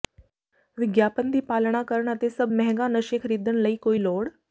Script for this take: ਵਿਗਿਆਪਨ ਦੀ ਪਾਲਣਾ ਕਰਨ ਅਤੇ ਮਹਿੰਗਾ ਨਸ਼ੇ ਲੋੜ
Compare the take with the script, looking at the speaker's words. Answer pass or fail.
fail